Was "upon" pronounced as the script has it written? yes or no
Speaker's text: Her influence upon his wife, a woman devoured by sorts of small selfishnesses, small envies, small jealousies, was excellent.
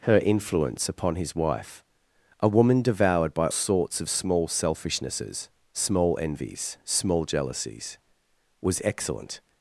yes